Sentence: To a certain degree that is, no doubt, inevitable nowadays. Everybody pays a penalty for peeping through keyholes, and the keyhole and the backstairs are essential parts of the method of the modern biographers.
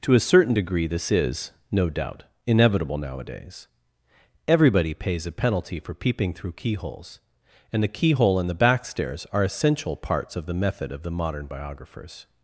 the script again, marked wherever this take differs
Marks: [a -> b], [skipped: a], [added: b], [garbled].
To a certain degree [that -> this] is, no doubt, inevitable nowadays. Everybody pays a penalty for peeping through keyholes, and the keyhole and the backstairs are essential parts of the method of the modern biographers.